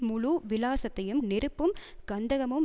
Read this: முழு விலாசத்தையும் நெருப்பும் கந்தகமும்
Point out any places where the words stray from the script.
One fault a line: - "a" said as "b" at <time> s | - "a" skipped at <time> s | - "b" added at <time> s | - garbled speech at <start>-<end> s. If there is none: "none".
none